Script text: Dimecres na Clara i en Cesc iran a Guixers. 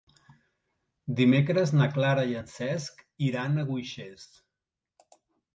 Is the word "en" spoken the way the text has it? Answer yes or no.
yes